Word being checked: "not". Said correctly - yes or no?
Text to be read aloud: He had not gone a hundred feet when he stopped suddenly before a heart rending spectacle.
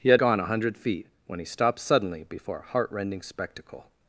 no